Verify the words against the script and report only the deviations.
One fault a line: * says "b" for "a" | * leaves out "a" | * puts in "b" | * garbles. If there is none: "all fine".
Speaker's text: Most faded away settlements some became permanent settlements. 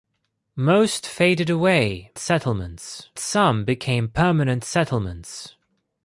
all fine